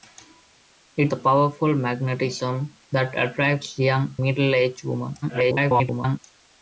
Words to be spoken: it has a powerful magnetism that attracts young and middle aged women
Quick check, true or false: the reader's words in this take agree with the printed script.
false